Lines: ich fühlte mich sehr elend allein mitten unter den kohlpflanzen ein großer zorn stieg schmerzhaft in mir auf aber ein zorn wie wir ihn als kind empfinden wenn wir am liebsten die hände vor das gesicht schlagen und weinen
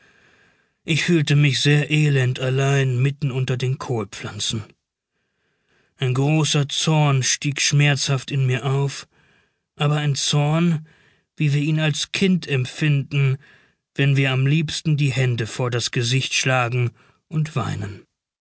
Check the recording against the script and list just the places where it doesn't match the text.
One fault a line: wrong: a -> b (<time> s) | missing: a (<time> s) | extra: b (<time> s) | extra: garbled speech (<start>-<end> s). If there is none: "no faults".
no faults